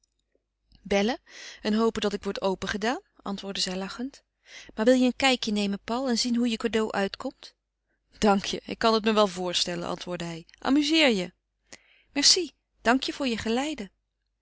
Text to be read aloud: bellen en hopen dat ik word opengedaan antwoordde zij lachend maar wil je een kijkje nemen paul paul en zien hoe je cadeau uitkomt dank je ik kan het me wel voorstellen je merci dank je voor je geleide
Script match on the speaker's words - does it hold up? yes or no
no